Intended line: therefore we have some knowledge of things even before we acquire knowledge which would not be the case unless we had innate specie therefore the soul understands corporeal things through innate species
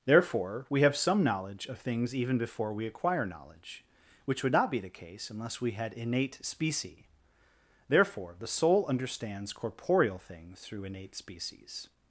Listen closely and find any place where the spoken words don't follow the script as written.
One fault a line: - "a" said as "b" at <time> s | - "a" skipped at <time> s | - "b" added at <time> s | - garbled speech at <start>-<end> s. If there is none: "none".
none